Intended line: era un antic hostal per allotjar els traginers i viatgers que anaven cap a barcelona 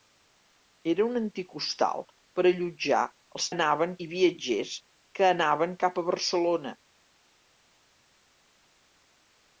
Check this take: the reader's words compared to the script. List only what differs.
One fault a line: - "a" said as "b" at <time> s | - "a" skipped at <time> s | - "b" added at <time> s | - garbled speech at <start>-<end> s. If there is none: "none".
- "traginers" said as "anaven" at 3.5 s